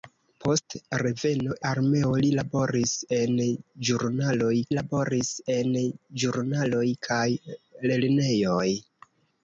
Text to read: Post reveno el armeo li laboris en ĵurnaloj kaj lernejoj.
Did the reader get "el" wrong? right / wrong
wrong